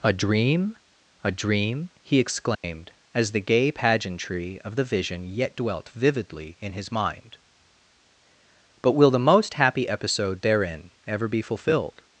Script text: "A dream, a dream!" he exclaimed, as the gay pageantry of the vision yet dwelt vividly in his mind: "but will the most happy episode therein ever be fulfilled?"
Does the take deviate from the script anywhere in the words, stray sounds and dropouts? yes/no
yes